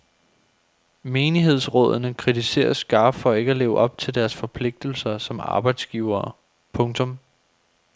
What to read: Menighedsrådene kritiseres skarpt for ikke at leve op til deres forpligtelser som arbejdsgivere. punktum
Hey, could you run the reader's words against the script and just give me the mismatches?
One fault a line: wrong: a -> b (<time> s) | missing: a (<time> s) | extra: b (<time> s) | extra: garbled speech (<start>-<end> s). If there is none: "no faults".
no faults